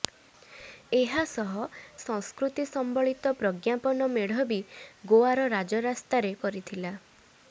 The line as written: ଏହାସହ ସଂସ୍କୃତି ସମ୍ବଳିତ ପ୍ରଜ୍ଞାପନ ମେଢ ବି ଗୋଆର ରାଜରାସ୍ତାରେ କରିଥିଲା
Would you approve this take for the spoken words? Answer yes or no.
yes